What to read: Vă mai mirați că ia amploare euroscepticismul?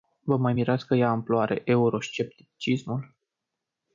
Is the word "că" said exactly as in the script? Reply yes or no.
yes